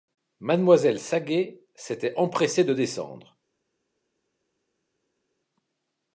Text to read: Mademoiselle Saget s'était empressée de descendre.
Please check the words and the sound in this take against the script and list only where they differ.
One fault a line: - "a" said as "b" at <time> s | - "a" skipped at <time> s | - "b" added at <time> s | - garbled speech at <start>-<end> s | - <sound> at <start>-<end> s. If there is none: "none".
none